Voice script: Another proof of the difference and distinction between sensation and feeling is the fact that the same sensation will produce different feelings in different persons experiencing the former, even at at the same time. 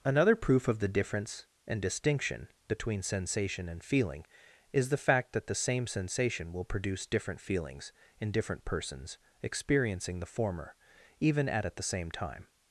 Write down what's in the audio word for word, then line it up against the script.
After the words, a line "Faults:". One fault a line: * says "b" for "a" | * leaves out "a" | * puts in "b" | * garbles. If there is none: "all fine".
Another proof of the difference and distinction between sensation and feeling is the fact that the same sensation will produce different feelings in different persons experiencing the former, even at at the same time.
Faults:
all fine